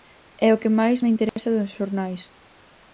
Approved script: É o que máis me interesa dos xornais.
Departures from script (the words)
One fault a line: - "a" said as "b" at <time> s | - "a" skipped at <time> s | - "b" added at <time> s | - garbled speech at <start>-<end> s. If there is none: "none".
none